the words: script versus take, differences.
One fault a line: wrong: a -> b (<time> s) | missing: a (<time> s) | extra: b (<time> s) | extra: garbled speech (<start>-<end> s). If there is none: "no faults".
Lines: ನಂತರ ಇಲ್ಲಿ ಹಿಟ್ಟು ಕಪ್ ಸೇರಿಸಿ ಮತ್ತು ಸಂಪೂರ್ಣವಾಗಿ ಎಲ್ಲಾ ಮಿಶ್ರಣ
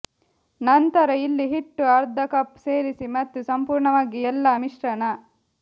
extra: ಅರ್ಧ (1.9 s)